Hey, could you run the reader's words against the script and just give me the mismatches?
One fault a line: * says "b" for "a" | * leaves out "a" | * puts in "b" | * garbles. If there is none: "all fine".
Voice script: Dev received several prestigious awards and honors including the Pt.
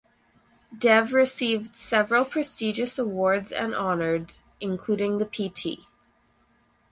all fine